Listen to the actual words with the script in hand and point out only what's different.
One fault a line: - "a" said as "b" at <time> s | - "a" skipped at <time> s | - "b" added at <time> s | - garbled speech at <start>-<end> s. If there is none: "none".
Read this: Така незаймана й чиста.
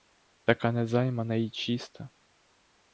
none